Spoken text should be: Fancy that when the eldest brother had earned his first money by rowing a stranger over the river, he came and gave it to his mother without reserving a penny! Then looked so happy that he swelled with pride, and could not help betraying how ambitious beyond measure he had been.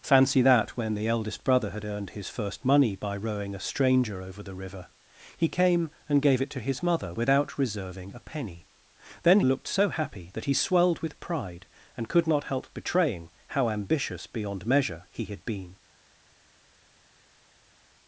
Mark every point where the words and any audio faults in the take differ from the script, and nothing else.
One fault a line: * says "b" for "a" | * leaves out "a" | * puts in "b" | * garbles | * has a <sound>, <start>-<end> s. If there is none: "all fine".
all fine